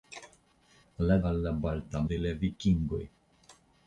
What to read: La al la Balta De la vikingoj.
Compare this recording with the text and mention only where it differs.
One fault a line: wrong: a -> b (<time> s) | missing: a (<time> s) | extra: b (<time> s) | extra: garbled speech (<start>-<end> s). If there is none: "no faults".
no faults